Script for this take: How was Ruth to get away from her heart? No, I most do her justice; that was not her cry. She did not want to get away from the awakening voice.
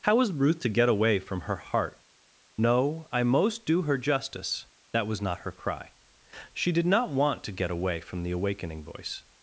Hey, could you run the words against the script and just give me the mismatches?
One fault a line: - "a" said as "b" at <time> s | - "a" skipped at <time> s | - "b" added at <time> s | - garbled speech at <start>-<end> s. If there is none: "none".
none